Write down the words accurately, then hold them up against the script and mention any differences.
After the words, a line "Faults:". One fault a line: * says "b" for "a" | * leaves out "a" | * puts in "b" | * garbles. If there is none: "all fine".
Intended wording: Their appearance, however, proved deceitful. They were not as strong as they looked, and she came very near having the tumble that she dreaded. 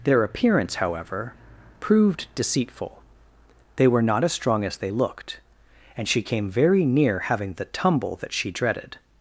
Their appearance, however, proved deceitful. They were not as strong as they looked, and she came very near having the tumble that she dreaded.
Faults:
all fine